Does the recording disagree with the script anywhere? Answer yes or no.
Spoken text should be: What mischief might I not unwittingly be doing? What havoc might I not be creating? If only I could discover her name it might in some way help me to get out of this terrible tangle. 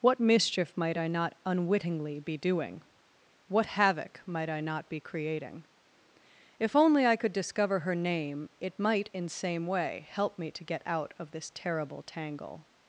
yes